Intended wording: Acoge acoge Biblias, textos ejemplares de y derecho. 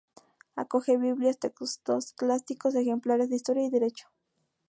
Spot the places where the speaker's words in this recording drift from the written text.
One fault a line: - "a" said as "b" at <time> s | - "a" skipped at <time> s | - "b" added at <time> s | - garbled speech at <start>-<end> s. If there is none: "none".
- "acoge" skipped at 1.0 s
- "clásicos" added at 2.1 s
- "historia" added at 3.4 s